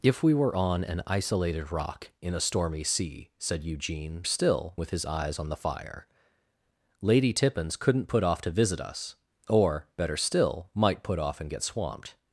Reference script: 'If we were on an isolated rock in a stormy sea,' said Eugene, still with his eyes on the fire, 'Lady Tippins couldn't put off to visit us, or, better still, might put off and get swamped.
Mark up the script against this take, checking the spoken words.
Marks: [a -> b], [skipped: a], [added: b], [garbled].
'If we were on an isolated rock in a stormy sea,' said Eugene, still with his eyes on the fire, 'Lady Tippins couldn't put off to visit us, or, better still, might put off and get swamped.